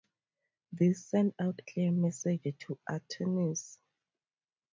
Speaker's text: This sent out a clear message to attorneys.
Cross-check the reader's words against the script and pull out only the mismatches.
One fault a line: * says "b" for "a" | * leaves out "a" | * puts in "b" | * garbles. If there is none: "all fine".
* leaves out "a"